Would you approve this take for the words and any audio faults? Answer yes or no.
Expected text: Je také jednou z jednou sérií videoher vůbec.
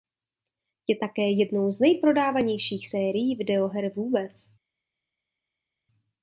no